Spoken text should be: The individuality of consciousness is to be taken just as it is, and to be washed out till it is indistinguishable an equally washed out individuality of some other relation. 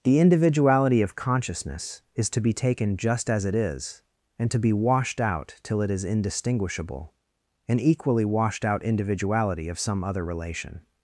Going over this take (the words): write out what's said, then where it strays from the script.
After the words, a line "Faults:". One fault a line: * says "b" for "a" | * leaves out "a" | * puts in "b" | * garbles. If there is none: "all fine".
The individuality of consciousness is to be taken just as it is, and to be washed out till it is indistinguishable an equally washed out individuality of some other relation.
Faults:
all fine